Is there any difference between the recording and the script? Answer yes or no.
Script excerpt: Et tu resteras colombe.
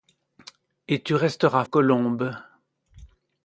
no